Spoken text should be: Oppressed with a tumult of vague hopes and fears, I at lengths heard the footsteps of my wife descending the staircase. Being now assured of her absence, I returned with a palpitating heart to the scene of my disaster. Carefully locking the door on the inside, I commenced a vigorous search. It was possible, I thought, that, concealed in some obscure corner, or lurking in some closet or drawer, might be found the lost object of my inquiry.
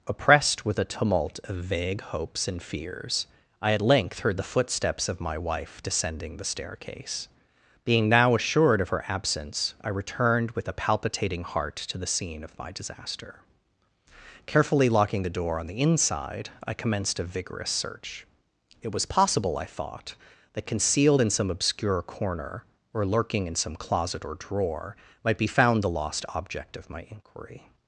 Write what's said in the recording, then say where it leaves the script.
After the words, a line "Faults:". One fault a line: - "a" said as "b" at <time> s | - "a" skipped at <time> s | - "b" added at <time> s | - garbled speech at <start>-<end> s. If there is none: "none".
Oppressed with a tumult of vague hopes and fears, I at length heard the footsteps of my wife descending the staircase. Being now assured of her absence, I returned with a palpitating heart to the scene of my disaster. Carefully locking the door on the inside, I commenced a vigorous search. It was possible, I thought, that, concealed in some obscure corner, or lurking in some closet or drawer, might be found the lost object of my inquiry.
Faults:
- "lengths" said as "length" at 3.8 s